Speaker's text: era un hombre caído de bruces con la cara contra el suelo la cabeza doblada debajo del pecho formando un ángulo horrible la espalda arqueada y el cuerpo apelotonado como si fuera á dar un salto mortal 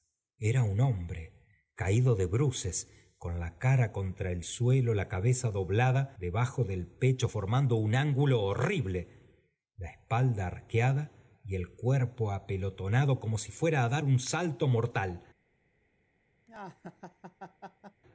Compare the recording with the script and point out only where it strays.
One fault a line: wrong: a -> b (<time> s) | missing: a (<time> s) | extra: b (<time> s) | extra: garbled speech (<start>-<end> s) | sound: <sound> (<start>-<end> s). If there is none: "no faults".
sound: laugh (16.5-18.0 s)